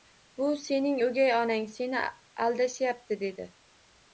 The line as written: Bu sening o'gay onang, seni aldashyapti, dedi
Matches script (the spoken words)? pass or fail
pass